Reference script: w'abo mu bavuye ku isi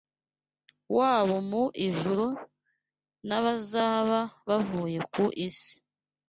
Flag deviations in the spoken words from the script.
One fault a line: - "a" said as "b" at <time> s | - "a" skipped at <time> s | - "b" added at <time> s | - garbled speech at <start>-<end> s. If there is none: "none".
- "ijuru n'abazaba" added at 1.9 s